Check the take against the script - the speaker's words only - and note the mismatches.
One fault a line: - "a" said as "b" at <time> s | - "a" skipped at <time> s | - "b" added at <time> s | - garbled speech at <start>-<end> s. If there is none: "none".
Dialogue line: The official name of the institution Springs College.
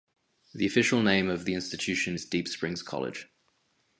- "is Deep" added at 2.1 s